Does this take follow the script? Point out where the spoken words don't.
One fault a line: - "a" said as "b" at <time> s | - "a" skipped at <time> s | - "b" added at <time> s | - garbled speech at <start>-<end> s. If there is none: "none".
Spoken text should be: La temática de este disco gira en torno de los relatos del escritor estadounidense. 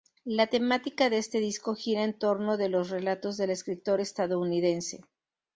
none